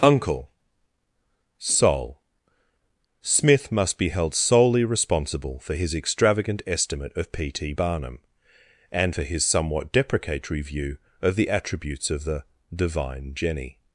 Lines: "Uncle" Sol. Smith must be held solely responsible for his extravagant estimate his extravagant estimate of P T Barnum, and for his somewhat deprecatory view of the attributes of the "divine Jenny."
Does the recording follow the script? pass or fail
fail